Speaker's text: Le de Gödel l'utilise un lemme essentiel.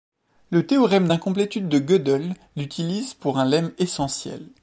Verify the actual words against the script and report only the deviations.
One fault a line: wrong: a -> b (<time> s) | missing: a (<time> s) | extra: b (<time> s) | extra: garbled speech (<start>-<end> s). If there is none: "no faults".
extra: théorème d'incomplétude (0.7 s)
extra: pour (3.1 s)